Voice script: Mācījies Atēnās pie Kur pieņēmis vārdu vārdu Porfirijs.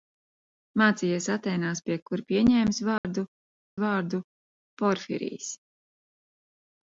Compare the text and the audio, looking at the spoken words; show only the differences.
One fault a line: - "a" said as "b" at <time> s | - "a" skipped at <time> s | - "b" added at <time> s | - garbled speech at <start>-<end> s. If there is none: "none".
none